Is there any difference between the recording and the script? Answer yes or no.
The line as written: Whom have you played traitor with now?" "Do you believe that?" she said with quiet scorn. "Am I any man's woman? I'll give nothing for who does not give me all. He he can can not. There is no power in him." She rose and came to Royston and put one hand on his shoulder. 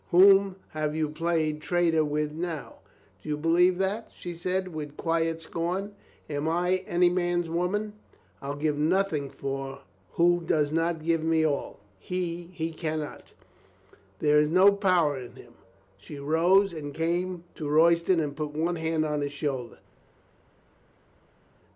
yes